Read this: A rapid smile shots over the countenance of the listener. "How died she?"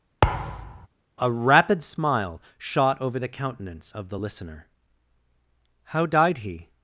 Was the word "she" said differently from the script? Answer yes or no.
yes